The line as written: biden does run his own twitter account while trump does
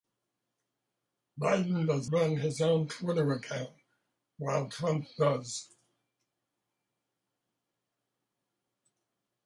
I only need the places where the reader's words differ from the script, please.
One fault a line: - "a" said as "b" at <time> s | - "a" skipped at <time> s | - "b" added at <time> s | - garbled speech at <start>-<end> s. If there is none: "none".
none